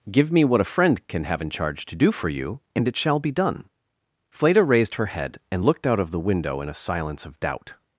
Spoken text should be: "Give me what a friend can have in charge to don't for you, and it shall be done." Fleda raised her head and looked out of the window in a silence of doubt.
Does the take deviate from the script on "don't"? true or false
true